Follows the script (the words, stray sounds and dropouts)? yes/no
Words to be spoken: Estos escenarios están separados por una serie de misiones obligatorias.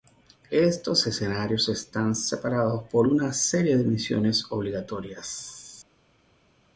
yes